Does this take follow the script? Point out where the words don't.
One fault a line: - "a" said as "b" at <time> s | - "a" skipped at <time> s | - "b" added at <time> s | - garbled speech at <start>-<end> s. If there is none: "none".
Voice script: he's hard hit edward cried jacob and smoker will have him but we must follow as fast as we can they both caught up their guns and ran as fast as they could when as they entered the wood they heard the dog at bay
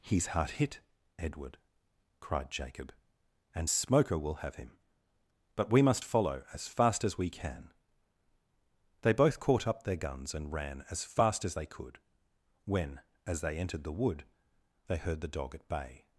none